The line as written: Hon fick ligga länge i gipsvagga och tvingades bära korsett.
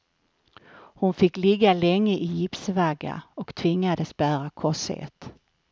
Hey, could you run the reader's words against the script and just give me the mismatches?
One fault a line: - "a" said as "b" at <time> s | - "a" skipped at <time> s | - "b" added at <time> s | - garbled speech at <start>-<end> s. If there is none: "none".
none